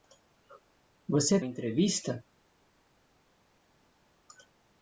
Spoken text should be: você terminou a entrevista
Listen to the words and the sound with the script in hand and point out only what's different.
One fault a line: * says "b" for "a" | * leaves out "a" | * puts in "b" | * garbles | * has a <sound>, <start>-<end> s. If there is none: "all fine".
* leaves out "terminou"